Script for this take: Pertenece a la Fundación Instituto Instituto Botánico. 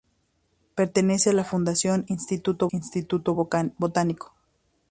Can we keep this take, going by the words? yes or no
yes